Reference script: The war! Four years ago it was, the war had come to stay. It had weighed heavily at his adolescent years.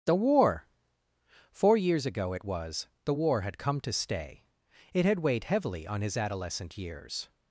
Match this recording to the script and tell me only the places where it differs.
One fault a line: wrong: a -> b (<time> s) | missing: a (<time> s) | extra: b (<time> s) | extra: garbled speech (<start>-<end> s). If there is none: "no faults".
wrong: at -> on (5.8 s)